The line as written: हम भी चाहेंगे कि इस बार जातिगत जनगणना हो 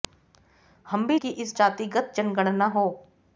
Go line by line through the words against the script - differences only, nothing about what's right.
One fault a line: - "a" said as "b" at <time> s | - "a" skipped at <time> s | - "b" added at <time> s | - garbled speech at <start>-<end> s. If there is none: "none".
- "चाहेंगे" skipped at 1.2 s
- "बार" skipped at 1.5 s